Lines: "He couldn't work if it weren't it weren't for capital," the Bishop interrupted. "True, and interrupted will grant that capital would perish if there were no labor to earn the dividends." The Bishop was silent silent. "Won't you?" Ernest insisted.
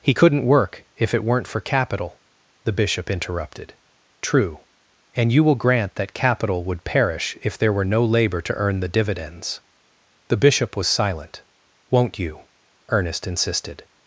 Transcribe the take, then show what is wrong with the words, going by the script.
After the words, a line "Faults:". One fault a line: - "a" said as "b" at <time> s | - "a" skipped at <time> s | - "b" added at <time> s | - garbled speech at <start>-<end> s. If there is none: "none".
"He couldn't work if it weren't for capital," the Bishop interrupted. "True, and you will grant that capital would perish if there were no labor to earn the dividends." The Bishop was silent. "Won't you?" Ernest insisted.
Faults:
- "it weren't" skipped at 1.5 s
- "interrupted" said as "you" at 5.3 s
- "silent" skipped at 11.4 s